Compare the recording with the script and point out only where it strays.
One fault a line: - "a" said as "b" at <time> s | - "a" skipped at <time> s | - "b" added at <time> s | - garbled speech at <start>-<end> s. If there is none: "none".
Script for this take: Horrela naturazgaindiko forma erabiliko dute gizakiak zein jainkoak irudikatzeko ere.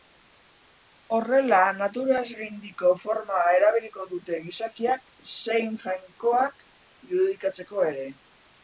none